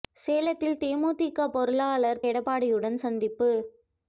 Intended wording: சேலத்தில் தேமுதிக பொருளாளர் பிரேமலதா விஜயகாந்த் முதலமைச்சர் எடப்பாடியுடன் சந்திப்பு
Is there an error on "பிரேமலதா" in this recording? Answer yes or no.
yes